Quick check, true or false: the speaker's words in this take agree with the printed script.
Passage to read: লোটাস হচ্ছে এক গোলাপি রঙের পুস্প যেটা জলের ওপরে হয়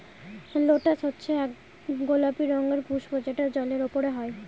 true